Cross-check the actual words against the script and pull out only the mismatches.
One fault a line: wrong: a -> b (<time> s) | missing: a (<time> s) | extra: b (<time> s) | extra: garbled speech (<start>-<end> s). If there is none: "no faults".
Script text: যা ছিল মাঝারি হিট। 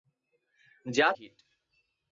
missing: ছিল মাঝারি (1.1 s)